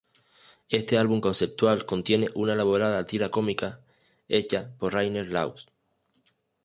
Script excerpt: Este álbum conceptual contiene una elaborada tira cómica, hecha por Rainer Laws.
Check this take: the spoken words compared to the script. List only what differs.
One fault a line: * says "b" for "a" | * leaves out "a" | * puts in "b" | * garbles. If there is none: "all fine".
all fine